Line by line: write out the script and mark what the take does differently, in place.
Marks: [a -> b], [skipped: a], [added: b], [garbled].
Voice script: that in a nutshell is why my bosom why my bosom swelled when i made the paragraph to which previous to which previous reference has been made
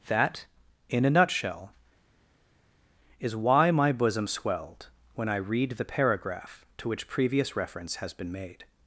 that in a nutshell is why my bosom [skipped: why my bosom] swelled when i [made -> read] the paragraph to which previous [skipped: to which previous] reference has been made